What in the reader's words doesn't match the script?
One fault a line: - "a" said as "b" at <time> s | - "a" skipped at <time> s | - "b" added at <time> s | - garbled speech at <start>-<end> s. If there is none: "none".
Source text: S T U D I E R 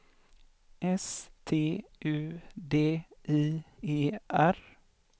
none